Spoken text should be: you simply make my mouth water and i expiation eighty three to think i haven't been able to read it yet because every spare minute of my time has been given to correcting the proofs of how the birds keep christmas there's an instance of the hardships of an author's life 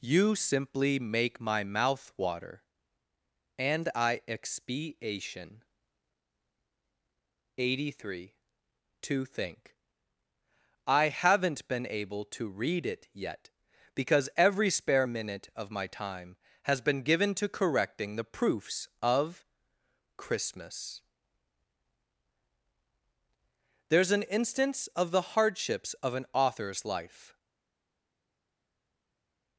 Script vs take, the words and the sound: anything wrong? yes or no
yes